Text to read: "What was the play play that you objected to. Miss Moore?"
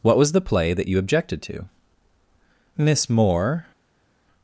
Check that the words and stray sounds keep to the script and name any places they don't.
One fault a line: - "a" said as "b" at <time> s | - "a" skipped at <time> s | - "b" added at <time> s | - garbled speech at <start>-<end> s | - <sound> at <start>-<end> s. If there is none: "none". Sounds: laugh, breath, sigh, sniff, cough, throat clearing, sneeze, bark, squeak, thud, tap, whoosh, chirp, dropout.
- "play" skipped at 0.7 s